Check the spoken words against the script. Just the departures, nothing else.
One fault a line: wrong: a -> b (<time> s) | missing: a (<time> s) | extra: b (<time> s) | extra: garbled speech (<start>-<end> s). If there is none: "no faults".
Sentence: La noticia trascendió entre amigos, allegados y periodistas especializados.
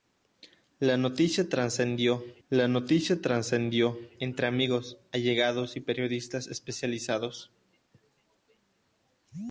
extra: la noticia trascendió (2.5 s)